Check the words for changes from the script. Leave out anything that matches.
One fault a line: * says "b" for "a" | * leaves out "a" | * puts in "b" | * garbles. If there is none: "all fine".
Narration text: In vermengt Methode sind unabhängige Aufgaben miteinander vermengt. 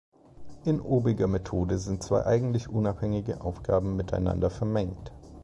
* says "obiger" for "vermengt"
* puts in "zwei eigentlich"